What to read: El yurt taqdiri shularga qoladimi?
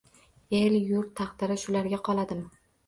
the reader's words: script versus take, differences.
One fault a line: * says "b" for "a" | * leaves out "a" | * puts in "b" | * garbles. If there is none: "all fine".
all fine